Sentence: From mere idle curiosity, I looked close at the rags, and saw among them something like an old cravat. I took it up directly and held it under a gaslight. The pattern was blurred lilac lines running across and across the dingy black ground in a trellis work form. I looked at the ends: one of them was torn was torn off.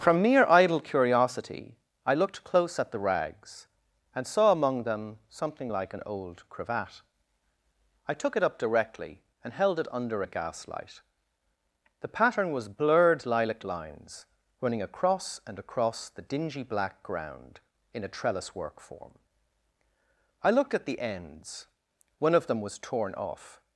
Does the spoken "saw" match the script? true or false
true